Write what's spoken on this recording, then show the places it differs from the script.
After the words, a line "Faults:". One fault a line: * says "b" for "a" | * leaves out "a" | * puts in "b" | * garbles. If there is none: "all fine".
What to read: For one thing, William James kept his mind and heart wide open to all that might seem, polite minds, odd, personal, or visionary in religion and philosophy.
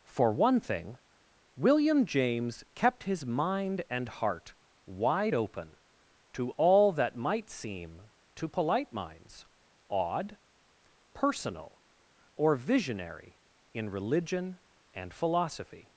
For one thing, William James kept his mind and heart wide open to all that might seem, to polite minds, odd, personal, or visionary in religion and philosophy.
Faults:
* puts in "to"